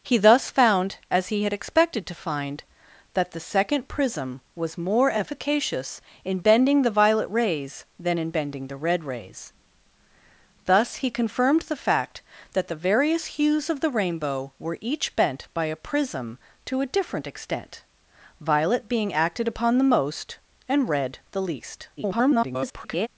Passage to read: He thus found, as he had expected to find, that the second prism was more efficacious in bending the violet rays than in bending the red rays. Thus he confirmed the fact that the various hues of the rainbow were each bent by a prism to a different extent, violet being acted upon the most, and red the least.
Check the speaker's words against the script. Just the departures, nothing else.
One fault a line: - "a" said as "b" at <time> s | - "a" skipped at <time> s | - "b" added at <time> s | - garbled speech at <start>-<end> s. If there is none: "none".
- garbled speech at 22.0-23.1 s